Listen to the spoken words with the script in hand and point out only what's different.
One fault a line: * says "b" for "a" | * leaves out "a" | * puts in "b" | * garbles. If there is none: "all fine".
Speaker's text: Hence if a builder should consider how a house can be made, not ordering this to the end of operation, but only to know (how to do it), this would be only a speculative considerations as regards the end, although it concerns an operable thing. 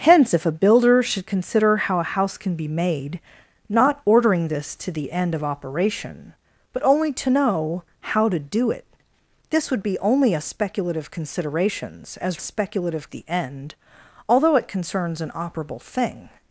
* says "speculative" for "regards"